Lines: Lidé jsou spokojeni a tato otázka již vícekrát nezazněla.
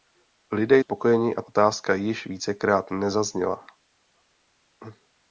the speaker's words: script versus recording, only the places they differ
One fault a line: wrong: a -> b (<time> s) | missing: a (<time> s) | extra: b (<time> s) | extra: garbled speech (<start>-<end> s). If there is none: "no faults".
missing: jsou (0.8 s)
missing: tato (1.4 s)